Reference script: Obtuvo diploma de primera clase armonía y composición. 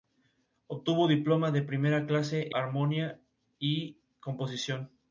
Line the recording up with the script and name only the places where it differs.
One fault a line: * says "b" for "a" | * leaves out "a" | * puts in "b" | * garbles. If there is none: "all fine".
all fine